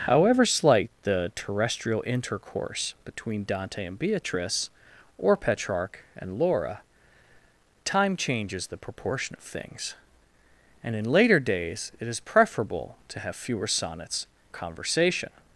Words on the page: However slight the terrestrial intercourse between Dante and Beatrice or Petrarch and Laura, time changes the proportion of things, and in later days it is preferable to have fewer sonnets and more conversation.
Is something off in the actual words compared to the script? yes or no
yes